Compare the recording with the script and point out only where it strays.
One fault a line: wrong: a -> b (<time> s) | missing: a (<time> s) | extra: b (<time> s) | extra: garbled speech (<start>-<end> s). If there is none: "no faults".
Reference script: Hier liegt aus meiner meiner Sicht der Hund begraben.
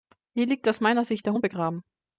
missing: meiner (1.1 s)